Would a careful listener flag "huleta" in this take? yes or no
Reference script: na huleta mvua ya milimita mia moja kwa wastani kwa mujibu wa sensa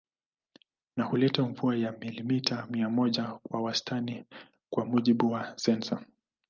no